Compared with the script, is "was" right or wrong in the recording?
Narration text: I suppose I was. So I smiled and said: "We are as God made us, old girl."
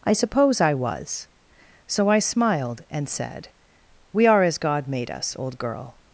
right